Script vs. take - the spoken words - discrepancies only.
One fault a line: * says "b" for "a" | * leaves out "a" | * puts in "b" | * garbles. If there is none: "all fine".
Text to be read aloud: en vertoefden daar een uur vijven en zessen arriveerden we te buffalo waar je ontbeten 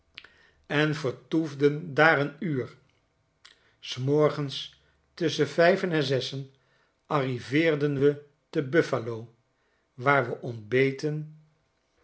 * puts in "s morgens tusschen"
* says "we" for "je"